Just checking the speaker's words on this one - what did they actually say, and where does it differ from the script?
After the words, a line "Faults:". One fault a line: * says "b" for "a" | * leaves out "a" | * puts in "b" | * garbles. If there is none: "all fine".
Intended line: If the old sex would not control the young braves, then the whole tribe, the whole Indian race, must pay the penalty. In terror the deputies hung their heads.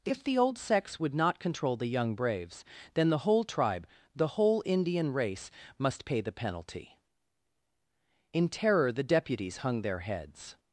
If the old sex would not control the young braves, then the whole tribe, the whole Indian race, must pay the penalty. In terror the deputies hung their heads.
Faults:
all fine